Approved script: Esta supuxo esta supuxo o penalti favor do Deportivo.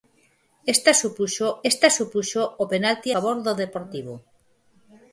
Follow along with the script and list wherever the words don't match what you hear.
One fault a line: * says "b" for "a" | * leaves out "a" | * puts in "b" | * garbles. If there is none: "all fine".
all fine